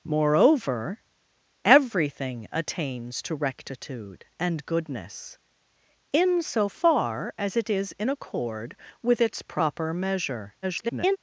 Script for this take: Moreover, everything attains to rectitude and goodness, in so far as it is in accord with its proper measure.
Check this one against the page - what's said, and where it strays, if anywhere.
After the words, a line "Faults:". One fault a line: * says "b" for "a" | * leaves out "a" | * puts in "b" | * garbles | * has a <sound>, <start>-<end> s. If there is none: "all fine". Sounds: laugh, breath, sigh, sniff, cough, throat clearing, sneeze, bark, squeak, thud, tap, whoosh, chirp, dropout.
Moreover, everything attains to rectitude and goodness, in so far as it is in accord with its proper measure. [garbled]
Faults:
* garbles